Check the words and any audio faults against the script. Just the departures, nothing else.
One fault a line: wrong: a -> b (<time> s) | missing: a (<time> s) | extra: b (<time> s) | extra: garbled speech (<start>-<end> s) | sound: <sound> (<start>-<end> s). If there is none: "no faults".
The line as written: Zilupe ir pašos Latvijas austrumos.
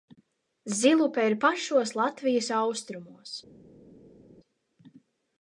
no faults